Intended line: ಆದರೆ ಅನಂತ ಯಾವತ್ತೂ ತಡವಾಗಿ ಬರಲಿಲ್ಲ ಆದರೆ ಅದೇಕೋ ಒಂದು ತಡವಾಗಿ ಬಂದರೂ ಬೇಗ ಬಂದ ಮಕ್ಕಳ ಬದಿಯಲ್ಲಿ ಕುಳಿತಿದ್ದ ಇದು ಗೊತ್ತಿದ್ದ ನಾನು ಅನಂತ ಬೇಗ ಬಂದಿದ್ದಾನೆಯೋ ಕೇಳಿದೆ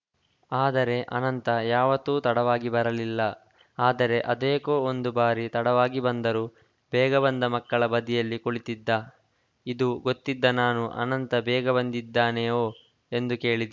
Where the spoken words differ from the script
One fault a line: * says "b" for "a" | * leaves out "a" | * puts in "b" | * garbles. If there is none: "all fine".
* puts in "ಬಾರಿ"
* puts in "ಎಂದು"